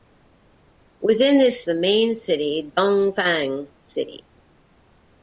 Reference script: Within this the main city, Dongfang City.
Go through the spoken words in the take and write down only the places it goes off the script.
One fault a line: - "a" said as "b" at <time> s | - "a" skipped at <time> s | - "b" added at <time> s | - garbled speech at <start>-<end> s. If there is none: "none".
none